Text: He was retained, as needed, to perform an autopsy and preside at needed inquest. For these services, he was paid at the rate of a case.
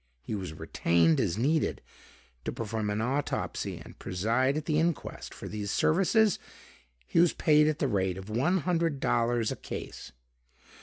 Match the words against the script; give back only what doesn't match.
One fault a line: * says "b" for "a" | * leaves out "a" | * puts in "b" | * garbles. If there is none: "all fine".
* says "the" for "needed"
* puts in "one hundred dollars"